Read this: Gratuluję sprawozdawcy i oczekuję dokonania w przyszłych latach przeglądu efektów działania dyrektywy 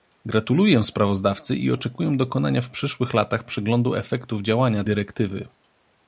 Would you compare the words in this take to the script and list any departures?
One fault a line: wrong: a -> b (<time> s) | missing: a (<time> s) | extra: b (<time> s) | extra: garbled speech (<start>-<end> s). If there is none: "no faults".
no faults